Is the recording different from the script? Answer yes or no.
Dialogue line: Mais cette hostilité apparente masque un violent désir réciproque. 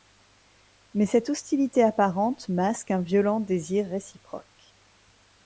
no